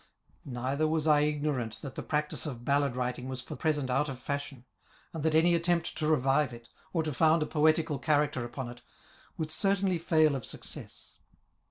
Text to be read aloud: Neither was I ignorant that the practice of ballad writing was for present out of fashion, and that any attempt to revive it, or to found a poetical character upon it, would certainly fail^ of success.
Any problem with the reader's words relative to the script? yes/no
no